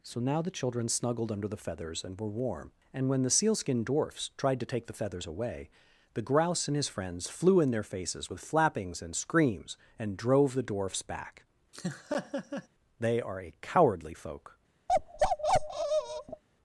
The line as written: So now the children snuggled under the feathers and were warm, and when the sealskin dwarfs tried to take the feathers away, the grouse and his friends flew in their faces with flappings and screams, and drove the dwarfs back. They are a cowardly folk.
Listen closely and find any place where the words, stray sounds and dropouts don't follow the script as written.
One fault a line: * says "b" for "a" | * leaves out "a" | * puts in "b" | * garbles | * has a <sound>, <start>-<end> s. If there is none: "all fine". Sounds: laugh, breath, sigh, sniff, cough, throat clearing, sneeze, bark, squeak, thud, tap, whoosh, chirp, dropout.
* has a laugh, 11.7-12.7 s
* has a bark, 14.9-16.4 s